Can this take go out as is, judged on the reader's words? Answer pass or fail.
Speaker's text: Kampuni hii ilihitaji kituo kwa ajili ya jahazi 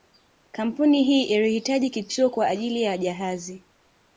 pass